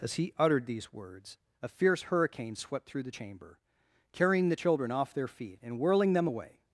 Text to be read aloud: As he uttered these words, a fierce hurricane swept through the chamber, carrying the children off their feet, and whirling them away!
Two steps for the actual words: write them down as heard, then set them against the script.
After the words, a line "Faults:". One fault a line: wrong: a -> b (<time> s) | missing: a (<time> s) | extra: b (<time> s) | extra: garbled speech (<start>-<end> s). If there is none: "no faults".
As he uttered these words, a fierce hurricane swept through the chamber, carrying the children off their feet, and whirling them away!
Faults:
no faults